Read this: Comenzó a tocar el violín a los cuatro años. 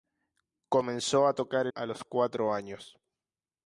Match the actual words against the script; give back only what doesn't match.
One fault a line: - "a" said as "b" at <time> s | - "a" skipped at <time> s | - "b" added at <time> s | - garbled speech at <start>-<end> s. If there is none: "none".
- "el violín" skipped at 1.7 s